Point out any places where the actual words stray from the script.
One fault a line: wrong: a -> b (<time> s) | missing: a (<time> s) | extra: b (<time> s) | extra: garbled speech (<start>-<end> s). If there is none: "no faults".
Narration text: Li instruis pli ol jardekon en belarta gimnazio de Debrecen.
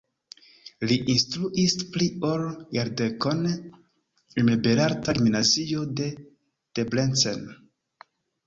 no faults